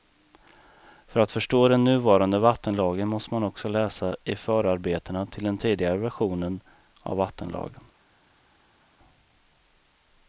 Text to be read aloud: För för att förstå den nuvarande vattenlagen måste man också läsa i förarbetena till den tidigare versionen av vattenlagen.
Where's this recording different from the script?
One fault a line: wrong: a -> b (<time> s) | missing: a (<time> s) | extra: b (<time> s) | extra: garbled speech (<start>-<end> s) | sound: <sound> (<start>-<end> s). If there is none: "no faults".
missing: för (1.2 s)